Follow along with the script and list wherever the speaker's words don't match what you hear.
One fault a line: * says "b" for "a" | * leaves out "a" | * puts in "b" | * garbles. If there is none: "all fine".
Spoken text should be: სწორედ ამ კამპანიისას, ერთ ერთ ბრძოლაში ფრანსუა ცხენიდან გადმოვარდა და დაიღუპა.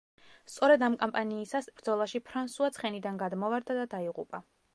* leaves out "ერთ ერთ"